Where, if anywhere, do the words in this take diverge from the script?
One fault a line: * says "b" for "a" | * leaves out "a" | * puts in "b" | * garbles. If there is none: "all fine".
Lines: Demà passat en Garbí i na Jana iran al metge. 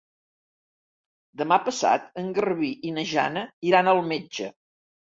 all fine